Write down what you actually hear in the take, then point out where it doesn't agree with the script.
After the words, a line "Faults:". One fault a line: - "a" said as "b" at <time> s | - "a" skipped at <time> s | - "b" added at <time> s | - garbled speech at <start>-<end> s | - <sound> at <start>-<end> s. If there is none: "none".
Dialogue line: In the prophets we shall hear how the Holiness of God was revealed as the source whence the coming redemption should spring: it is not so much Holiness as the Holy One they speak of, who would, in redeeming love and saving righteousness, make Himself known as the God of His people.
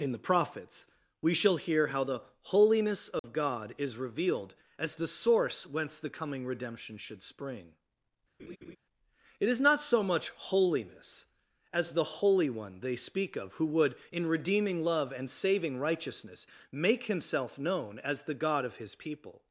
In the prophets we shall hear how the Holiness of God is revealed as the source whence the coming redemption should spring: it is not so much Holiness as the Holy One they speak of, who would, in redeeming love and saving righteousness, make Himself known as the God of His people.
Faults:
- dropout at 3.2-3.2 s
- "was" said as "is" at 3.8 s
- laugh at 8.4-8.8 s